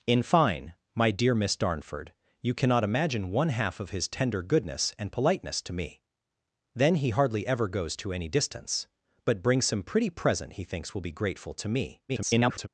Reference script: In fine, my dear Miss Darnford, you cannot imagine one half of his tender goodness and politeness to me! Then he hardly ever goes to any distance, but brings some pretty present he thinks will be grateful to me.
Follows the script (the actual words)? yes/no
no